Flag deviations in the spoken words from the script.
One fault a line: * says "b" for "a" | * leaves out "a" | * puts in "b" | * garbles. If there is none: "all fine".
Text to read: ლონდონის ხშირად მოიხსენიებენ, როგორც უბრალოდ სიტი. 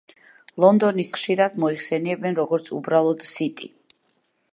all fine